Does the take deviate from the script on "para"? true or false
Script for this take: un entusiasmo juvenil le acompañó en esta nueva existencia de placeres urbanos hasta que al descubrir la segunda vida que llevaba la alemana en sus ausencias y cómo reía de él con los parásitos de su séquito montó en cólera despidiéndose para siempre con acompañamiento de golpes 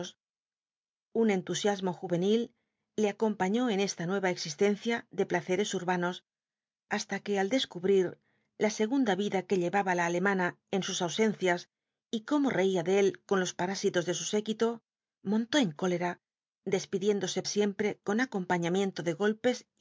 true